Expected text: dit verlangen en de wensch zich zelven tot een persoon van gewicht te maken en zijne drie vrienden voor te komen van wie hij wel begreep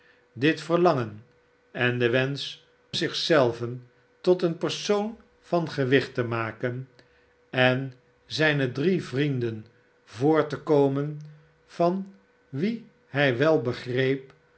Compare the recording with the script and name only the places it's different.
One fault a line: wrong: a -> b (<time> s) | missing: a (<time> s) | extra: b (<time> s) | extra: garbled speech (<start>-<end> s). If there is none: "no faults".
no faults